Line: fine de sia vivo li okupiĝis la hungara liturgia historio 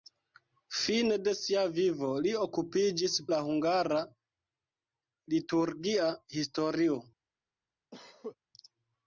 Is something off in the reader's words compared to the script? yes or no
no